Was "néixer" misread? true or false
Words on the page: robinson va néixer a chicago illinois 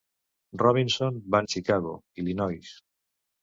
true